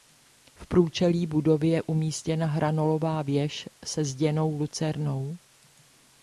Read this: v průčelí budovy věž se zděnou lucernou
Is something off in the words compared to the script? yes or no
yes